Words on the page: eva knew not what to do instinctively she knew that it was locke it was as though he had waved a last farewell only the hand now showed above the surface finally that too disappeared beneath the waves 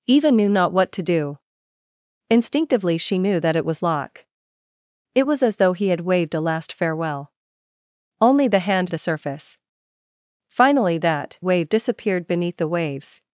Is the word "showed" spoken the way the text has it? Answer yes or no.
no